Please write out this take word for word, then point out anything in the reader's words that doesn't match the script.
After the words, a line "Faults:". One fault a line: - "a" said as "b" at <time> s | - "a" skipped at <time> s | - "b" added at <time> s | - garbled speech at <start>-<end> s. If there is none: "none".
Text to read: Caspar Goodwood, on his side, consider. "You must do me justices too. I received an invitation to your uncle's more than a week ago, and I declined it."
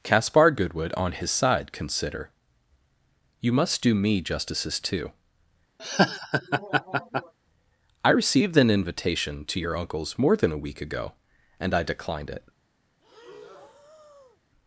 Caspar Goodwood, on his side, consider. "You must do me justices too. I received an invitation to your uncle's more than a week ago, and I declined it."
Faults:
none